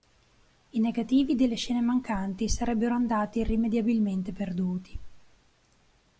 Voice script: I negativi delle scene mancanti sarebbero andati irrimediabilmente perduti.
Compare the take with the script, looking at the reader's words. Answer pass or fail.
pass